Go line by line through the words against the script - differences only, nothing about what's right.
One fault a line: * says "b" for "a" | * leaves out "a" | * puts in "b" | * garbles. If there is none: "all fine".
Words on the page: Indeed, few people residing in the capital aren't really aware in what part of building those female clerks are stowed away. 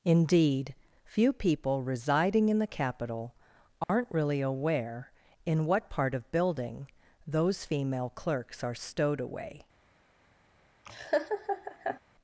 all fine